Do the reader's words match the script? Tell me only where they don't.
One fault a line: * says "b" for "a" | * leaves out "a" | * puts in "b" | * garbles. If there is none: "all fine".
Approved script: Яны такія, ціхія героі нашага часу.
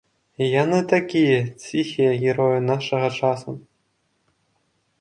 all fine